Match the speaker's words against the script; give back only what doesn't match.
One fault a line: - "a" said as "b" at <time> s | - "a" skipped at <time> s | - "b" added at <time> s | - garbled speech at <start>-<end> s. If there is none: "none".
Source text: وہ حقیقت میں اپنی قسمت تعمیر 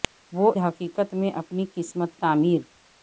none